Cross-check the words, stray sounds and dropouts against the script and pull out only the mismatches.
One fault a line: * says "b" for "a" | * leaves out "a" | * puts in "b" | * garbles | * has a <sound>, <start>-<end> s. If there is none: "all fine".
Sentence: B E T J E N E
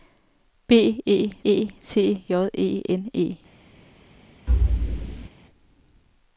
* puts in "E"
* has a thud, 4.5-5.3 s